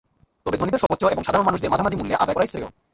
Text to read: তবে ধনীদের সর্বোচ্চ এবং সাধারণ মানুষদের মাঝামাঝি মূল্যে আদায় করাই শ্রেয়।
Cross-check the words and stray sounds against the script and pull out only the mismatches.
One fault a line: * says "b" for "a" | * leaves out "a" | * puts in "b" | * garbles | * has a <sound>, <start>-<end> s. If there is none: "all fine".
* has a dropout, 0.9-0.9 s